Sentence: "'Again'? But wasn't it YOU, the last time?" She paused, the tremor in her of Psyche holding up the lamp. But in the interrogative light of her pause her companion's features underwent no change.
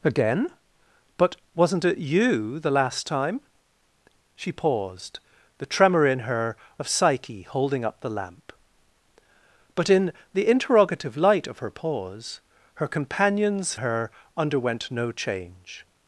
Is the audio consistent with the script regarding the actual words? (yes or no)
no